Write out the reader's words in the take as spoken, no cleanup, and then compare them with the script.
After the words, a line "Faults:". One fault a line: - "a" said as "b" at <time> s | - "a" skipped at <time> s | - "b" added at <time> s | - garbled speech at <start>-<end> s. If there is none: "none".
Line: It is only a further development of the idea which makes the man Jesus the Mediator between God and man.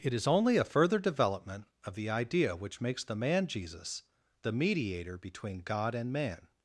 It is only a further development of the idea which makes the man Jesus the Mediator between God and man.
Faults:
none